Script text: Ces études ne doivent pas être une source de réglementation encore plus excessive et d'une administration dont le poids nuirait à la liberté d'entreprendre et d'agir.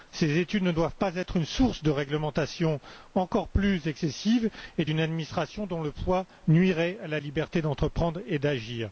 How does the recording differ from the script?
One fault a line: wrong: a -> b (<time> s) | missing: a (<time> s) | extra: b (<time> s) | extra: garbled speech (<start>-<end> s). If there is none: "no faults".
no faults